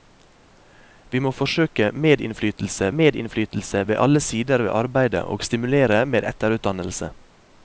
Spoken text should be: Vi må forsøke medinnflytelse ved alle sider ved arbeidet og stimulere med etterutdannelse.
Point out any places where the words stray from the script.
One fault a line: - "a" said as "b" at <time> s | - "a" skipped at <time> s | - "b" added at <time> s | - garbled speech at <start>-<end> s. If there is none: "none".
- "medinnflytelse" added at 3.0 s